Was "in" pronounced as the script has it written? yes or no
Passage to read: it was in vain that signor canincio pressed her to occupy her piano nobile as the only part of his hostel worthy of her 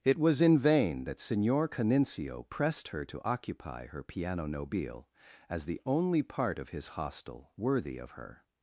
yes